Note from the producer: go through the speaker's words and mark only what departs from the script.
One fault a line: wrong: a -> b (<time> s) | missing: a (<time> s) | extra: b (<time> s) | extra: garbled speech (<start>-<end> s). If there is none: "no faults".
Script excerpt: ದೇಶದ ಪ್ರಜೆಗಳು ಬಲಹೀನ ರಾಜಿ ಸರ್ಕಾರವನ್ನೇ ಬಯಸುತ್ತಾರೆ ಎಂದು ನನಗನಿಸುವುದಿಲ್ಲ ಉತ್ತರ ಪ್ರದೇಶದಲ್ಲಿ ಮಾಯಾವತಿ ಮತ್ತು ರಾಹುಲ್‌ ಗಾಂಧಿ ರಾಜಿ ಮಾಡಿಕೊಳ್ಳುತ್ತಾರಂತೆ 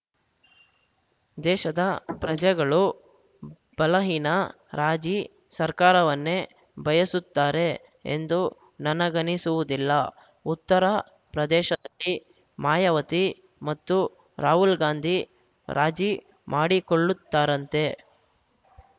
no faults